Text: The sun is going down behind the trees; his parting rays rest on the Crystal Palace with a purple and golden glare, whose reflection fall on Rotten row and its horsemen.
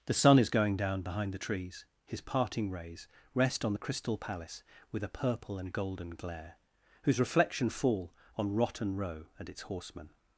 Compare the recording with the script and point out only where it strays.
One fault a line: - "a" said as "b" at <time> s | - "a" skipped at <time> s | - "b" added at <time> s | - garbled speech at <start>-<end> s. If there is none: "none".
none